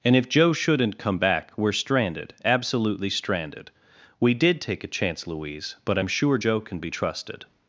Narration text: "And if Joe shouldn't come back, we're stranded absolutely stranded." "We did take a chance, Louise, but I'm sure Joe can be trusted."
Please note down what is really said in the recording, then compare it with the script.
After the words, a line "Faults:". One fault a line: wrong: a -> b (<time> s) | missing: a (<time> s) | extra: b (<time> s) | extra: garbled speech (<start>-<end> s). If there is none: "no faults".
"And if Joe shouldn't come back, we're stranded absolutely stranded." "We did take a chance, Louise, but I'm sure Joe can be trusted."
Faults:
no faults